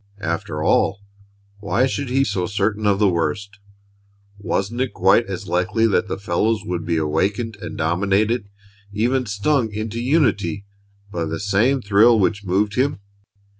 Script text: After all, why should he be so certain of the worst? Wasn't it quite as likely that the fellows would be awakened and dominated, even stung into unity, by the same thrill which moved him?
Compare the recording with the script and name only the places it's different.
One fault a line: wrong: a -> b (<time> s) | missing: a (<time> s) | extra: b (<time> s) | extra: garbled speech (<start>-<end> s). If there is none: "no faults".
missing: be (2.2 s)